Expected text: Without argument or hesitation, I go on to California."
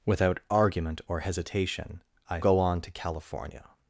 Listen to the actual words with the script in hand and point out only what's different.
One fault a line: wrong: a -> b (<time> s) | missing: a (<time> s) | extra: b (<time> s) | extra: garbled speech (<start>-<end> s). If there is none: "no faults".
no faults